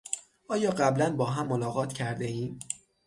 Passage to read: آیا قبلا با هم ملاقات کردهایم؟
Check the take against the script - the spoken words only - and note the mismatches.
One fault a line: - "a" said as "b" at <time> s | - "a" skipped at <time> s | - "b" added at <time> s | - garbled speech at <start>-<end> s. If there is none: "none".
none